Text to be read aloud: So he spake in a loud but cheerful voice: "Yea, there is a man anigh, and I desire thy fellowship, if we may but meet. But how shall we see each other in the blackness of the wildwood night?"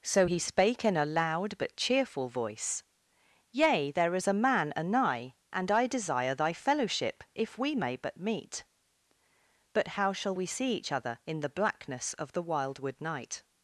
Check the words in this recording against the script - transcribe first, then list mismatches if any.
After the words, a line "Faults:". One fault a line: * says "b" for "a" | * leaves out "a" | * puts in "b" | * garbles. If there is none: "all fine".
So he spake in a loud but cheerful voice: "Yea, there is a man anigh, and I desire thy fellowship, if we may but meet. But how shall we see each other in the blackness of the wildwood night?"
Faults:
all fine